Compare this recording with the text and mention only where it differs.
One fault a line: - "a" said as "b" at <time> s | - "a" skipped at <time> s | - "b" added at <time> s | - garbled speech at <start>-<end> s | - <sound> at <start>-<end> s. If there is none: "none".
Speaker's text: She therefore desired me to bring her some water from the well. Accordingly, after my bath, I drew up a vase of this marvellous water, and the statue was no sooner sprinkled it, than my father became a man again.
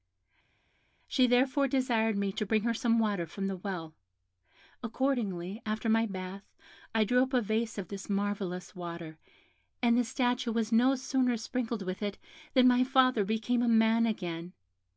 - "with" added at 11.8 s